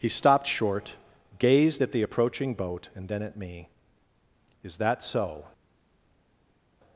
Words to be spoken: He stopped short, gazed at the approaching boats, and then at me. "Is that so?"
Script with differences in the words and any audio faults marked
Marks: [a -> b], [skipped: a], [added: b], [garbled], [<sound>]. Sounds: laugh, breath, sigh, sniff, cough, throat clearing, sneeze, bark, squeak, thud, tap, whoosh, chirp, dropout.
He stopped short, gazed at the approaching [boats, -> boat] and then at me. "Is that so?"